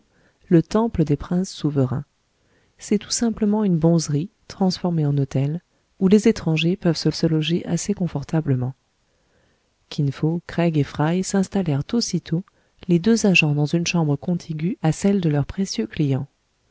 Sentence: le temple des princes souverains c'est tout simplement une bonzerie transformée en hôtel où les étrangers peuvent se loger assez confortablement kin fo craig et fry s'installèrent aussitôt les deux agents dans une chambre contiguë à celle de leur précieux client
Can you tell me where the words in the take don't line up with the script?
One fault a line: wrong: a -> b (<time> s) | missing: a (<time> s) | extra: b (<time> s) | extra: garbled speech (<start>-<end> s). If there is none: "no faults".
extra: se (7.1 s)